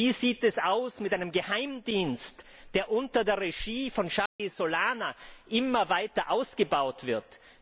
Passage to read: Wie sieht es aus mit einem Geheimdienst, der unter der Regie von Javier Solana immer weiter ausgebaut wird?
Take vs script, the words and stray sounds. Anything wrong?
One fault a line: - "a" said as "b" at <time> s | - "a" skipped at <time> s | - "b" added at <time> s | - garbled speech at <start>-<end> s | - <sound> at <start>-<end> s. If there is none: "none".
- dropout at 4.3-4.4 s